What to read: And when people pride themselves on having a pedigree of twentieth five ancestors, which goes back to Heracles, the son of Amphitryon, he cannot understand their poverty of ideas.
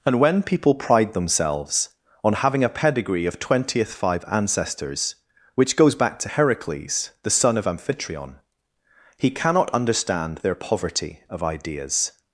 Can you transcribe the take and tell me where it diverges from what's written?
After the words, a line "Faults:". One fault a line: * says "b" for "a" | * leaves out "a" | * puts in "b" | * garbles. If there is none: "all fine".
And when people pride themselves on having a pedigree of twentieth five ancestors, which goes back to Heracles, the son of Amphitryon, he cannot understand their poverty of ideas.
Faults:
all fine